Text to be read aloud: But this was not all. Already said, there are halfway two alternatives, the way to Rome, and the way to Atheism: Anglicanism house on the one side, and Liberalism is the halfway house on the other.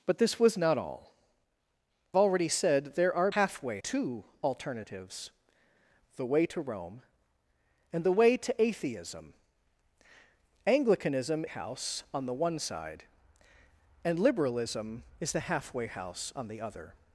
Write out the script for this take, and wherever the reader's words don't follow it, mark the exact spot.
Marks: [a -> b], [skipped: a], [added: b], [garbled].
But this was not all. Already said, there are halfway two alternatives, the way to Rome, and the way to Atheism: Anglicanism house on the one side, and Liberalism is the halfway house on the other.